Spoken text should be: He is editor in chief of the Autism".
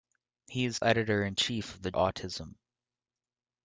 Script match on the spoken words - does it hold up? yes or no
yes